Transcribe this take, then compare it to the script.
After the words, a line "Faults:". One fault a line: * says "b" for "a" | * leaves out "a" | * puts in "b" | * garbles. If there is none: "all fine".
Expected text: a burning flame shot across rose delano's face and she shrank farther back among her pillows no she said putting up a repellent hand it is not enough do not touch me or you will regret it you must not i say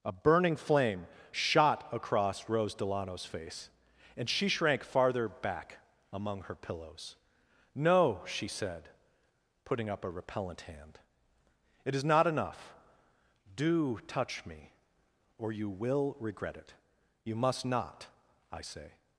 a burning flame shot across rose delano's face and she shrank farther back among her pillows no she said putting up a repellent hand it is not enough do touch me or you will regret it you must not i say
Faults:
* leaves out "not"